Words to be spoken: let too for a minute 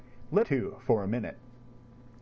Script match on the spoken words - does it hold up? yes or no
yes